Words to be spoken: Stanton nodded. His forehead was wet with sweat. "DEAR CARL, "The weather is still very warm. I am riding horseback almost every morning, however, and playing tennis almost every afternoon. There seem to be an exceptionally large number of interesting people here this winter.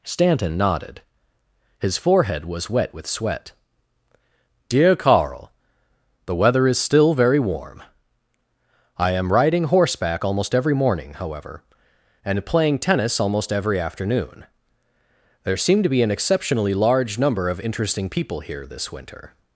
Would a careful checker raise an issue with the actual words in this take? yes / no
no